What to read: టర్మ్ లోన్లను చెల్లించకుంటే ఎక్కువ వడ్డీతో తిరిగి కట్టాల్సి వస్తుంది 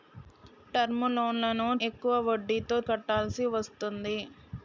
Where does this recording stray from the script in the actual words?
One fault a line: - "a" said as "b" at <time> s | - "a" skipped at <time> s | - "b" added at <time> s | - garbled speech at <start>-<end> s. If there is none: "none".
- "చెల్లించకుంటే" skipped at 1.7 s
- "తిరిగి" skipped at 2.8 s